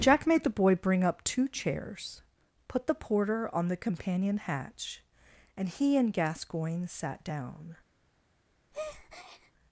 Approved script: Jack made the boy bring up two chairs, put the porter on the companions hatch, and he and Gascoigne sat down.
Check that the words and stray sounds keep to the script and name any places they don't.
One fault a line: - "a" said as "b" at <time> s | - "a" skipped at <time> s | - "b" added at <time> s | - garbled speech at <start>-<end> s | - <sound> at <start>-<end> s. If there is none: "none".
- "companions" said as "companion" at 3.8 s
- breath at 8.7-9.5 s